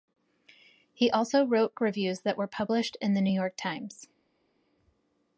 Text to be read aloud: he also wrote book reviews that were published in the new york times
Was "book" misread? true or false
true